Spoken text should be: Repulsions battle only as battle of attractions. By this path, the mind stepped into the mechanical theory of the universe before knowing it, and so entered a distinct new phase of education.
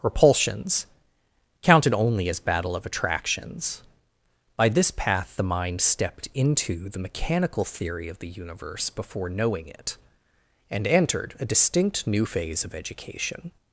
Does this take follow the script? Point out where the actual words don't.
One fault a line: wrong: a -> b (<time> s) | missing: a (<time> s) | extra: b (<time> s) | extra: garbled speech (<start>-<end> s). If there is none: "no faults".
wrong: battle -> counted (1.6 s)
missing: so (10.9 s)